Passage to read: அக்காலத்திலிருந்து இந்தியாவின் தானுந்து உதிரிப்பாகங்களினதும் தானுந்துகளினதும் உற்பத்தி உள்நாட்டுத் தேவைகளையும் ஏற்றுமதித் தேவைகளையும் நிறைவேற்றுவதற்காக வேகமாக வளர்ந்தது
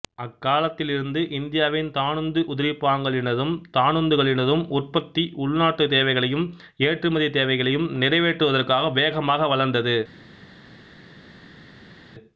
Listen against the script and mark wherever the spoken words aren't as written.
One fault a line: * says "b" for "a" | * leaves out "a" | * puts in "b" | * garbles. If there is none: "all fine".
all fine